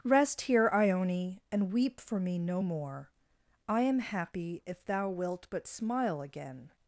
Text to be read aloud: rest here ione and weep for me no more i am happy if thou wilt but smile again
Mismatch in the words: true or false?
false